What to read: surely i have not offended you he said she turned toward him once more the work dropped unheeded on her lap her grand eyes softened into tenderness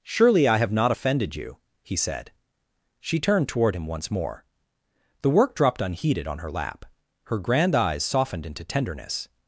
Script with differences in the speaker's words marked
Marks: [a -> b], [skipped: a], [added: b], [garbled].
surely i have not offended you he said she turned toward him once more the work dropped unheeded on her lap her grand eyes softened into tenderness